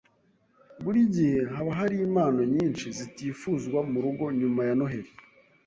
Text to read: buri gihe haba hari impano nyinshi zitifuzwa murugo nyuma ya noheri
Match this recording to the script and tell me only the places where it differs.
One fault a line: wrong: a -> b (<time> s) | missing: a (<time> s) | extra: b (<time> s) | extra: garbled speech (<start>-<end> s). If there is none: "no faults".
no faults